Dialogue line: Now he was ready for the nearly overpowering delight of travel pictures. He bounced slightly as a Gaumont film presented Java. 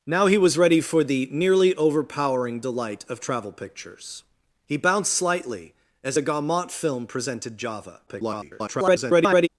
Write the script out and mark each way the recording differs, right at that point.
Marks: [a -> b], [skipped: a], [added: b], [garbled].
Now he was ready for the nearly overpowering delight of travel pictures. He bounced slightly as a Gaumont film presented Java. [garbled]